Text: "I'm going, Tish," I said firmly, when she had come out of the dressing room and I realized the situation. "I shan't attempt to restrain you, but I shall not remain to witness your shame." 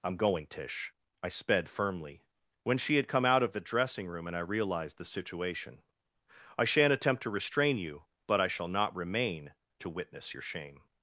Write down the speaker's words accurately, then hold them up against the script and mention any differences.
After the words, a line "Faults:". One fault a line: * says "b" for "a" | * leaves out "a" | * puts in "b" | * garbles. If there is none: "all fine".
"I'm going, Tish," I sped firmly, when she had come out of the dressing room and I realized the situation. "I shan't attempt to restrain you, but I shall not remain to witness your shame."
Faults:
* says "sped" for "said"